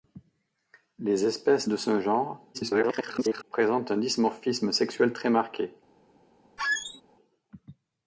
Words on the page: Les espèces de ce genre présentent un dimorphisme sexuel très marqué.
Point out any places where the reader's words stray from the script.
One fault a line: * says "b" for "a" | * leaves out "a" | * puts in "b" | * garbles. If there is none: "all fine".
* garbles